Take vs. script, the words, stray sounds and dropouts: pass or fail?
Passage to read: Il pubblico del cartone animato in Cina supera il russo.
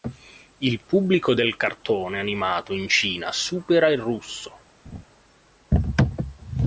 fail